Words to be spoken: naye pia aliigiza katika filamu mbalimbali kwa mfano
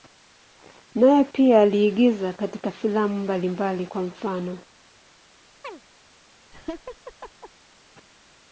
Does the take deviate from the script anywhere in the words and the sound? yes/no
yes